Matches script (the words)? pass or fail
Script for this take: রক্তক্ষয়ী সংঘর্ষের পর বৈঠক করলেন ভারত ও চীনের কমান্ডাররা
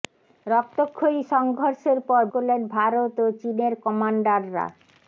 fail